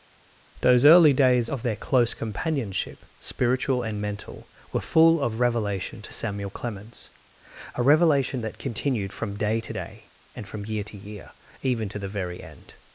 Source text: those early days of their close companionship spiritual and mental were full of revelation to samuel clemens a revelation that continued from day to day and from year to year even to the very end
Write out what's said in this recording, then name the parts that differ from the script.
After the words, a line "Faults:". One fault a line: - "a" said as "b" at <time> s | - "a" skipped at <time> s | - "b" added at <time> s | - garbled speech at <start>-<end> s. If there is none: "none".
those early days of their close companionship spiritual and mental were full of revelation to samuel clemens a revelation that continued from day to day and from year to year even to the very end
Faults:
none